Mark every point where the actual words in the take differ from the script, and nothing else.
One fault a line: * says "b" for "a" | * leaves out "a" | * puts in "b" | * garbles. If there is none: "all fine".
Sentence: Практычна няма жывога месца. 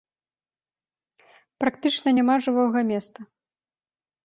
all fine